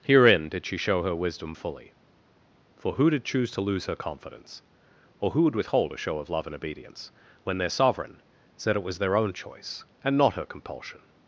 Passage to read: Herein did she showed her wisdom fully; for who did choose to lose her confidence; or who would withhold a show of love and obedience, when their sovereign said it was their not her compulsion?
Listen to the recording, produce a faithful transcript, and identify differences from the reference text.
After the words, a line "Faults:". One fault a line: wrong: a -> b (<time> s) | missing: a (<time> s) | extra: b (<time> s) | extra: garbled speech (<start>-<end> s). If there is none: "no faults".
Herein did she show her wisdom fully; for who did choose to lose her confidence; or who would withhold a show of love and obedience, when their sovereign said it was their own choice, and not her compulsion?
Faults:
wrong: showed -> show (0.8 s)
extra: own choice and (9.2 s)